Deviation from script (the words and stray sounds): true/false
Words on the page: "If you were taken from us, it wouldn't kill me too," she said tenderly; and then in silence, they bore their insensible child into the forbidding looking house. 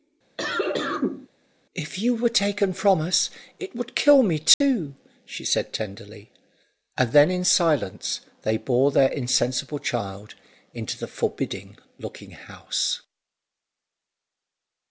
true